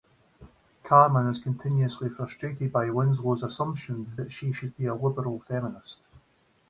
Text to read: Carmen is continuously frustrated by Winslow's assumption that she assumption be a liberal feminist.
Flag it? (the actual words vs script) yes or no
yes